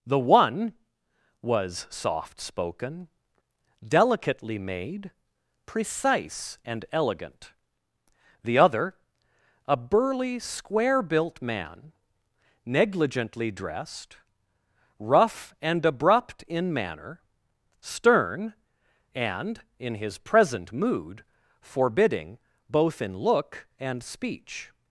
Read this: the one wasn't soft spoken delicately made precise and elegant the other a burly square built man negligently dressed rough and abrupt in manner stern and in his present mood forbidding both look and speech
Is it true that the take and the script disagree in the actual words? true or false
true